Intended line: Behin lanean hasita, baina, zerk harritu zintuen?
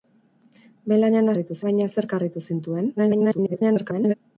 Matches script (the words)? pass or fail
fail